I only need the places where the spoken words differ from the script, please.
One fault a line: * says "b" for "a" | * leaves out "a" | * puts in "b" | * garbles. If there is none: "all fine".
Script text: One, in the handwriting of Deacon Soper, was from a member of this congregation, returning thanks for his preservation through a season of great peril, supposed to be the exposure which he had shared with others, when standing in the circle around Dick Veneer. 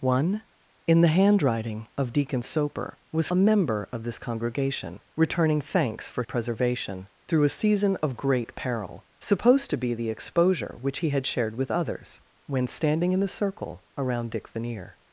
* leaves out "from"
* leaves out "his"